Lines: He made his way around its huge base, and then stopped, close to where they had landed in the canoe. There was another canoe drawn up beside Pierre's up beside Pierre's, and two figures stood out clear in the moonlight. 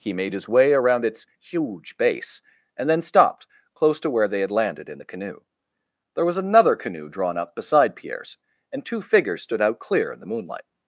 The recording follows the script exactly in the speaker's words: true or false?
false